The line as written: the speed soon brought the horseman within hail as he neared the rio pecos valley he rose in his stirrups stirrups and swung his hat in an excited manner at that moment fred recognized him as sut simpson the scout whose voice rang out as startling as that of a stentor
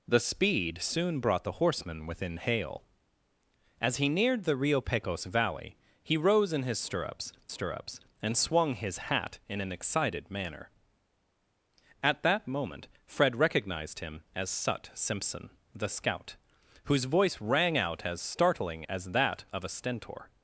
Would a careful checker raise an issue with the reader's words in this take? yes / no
no